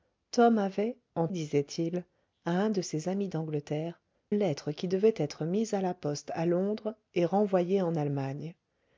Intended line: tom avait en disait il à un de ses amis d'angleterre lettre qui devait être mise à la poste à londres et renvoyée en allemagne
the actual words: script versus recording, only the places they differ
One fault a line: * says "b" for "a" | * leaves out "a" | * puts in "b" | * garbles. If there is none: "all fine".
all fine